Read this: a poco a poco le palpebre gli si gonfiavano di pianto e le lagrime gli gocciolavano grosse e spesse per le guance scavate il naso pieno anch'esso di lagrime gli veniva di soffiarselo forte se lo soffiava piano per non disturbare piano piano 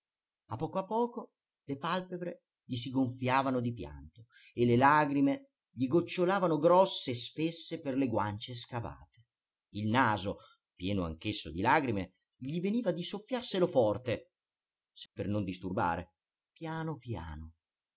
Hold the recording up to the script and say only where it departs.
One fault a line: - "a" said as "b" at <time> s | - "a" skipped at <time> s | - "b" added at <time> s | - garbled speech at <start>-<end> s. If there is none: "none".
- "lo soffiava piano" skipped at 15.1 s